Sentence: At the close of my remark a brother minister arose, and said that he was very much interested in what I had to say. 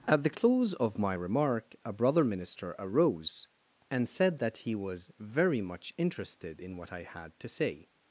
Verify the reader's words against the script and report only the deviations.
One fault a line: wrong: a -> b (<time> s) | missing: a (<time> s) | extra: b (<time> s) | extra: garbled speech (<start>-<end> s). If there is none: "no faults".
no faults